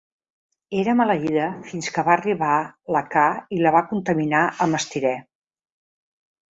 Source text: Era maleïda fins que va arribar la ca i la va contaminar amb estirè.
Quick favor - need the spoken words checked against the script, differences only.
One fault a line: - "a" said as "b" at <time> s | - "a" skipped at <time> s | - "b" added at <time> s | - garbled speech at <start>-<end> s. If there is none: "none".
none